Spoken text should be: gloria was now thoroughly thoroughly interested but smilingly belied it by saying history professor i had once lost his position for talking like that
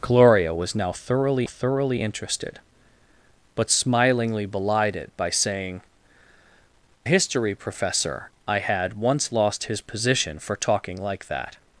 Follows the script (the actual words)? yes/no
yes